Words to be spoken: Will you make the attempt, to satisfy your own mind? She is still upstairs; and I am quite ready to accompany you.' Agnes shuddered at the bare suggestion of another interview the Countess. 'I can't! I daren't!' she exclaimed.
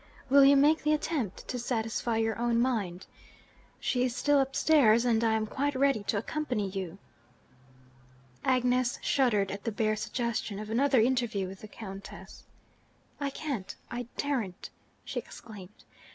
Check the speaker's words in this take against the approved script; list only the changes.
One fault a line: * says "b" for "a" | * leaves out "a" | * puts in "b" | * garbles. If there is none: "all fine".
* puts in "with"